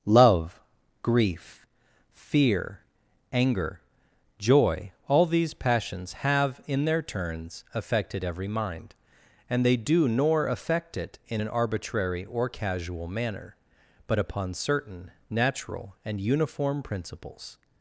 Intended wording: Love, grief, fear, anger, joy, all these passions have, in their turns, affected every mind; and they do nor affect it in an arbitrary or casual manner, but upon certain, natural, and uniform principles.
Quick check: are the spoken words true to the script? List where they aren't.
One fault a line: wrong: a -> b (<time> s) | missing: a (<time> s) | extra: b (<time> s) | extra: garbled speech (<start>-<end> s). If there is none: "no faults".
no faults